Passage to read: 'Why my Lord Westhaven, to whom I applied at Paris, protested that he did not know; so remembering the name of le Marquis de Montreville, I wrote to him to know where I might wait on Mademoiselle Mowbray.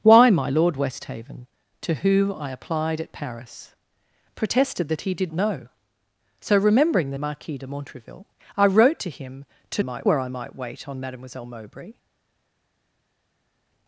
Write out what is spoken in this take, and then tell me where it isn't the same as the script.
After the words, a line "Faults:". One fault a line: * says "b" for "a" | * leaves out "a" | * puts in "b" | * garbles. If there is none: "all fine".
'Why my Lord Westhaven, to whom I applied at Paris, protested that he did know; so remembering the Marquis de Montreville, I wrote to him to might where I might wait on Mademoiselle Mowbray.
Faults:
* leaves out "not"
* leaves out "name of le"
* says "might" for "know"